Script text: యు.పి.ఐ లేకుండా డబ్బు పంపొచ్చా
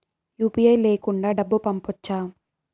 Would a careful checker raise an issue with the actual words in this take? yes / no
no